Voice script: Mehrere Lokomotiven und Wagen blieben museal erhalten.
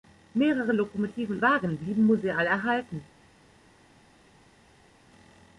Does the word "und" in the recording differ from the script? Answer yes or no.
yes